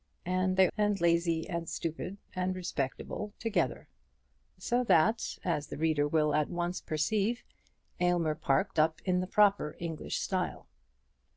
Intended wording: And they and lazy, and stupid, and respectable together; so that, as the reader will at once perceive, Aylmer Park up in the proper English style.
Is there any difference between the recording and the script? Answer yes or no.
no